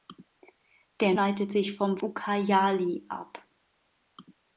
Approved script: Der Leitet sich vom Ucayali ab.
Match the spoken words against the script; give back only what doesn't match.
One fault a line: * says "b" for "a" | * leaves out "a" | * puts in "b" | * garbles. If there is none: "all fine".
all fine